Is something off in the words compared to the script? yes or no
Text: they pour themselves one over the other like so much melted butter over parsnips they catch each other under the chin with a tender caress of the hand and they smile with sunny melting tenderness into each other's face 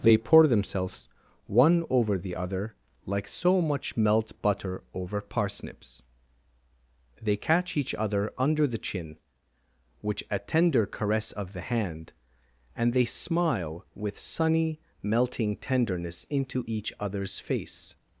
yes